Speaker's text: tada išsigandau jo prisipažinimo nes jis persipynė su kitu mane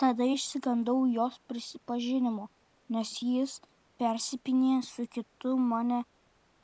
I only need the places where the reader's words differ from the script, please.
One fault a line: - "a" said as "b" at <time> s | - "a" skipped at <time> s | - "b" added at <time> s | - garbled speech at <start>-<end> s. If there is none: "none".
- "jo" said as "jos" at 1.2 s